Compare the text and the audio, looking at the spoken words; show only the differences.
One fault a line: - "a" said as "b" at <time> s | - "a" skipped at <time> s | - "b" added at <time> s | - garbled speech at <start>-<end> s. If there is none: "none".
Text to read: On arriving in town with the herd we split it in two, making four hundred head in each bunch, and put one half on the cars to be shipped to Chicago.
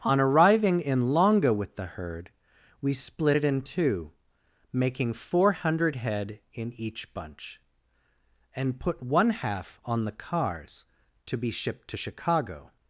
- "town" said as "longa" at 1.1 s